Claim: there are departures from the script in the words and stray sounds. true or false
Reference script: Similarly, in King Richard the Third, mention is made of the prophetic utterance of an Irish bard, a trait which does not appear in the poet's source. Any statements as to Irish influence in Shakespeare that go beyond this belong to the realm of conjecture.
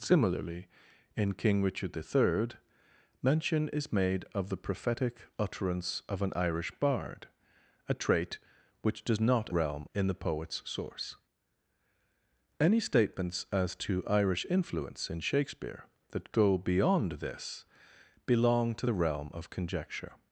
true